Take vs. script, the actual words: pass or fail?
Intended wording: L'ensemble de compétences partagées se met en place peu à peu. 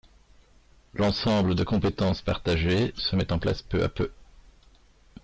pass